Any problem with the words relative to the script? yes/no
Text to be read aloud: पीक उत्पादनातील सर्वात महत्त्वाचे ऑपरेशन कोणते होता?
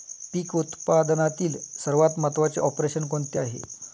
yes